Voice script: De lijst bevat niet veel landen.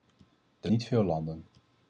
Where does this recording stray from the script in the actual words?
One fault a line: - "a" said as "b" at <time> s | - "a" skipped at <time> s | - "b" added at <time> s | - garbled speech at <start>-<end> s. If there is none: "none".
- "lijst bevat" skipped at 0.7 s